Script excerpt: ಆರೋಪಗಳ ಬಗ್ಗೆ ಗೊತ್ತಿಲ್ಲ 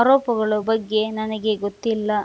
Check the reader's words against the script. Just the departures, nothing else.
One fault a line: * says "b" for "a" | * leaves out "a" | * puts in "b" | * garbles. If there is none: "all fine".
* puts in "ನನಗೆ"